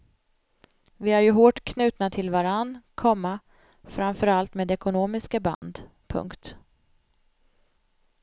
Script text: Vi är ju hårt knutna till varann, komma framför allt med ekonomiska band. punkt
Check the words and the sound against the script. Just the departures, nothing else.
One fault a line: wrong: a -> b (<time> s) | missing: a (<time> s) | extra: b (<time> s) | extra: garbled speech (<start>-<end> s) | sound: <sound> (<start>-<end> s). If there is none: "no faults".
sound: dropout (5.5-5.6 s)